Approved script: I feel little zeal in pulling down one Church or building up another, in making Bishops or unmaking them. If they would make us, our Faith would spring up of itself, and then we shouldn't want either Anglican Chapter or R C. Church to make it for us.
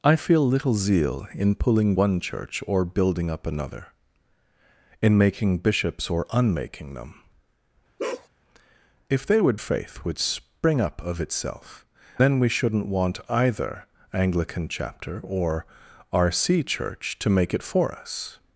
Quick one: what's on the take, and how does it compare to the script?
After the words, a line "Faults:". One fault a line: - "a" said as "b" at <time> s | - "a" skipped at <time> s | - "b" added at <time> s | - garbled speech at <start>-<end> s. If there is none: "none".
I feel little zeal in pulling one Church or building up another, in making Bishops or unmaking them. If they would Faith would spring up of itself, then we shouldn't want either Anglican Chapter or R C. Church to make it for us.
Faults:
- "down" skipped at 1.9 s
- "make us our" skipped at 9.6 s
- "and" skipped at 11.9 s